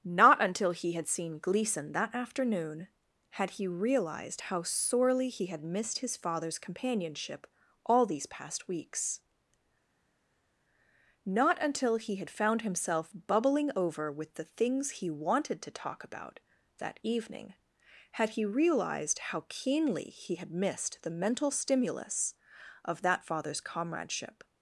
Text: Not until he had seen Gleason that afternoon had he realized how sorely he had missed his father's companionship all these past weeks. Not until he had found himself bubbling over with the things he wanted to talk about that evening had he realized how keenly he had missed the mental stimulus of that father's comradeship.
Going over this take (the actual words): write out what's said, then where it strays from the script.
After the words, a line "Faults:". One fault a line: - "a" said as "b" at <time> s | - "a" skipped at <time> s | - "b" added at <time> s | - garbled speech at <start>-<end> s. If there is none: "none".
Not until he had seen Gleason that afternoon had he realized how sorely he had missed his father's companionship all these past weeks. Not until he had found himself bubbling over with the things he wanted to talk about that evening had he realized how keenly he had missed the mental stimulus of that father's comradeship.
Faults:
none